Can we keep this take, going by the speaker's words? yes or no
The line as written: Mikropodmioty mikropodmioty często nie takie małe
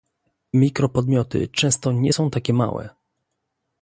no